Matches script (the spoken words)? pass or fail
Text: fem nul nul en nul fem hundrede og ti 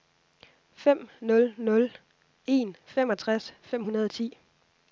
fail